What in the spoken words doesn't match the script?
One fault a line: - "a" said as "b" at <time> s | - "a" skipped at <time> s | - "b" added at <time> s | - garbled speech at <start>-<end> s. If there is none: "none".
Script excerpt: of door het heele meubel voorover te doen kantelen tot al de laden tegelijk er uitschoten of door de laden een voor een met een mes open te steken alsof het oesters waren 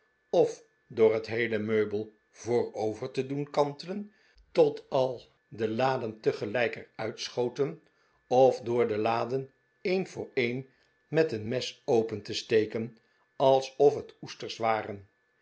none